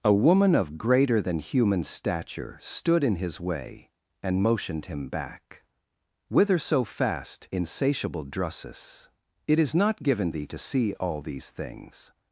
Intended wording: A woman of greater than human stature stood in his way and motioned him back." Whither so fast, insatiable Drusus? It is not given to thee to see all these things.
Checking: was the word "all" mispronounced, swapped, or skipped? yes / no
no